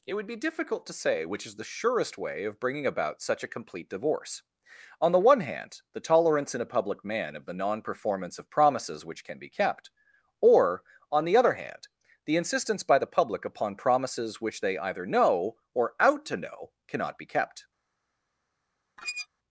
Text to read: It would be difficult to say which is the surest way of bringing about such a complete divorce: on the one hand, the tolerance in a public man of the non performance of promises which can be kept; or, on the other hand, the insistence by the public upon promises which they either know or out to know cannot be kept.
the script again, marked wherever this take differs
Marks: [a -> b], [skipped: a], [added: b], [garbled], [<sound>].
It would be difficult to say which is the surest way of bringing about such a complete divorce: on the one hand, the tolerance in a public man of the non performance of promises which can be kept; or, on the other hand, the insistence by the public upon promises which they either know or out to know cannot be kept. [squeak]